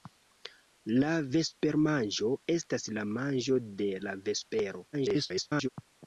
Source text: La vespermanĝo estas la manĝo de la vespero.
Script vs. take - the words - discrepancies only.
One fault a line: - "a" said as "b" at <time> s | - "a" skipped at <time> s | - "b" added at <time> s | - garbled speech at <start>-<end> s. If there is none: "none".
- garbled speech at 4.9-5.7 s